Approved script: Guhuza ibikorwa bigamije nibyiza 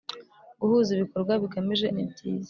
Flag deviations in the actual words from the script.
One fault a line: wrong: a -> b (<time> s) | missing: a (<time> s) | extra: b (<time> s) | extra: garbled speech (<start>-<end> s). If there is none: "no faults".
no faults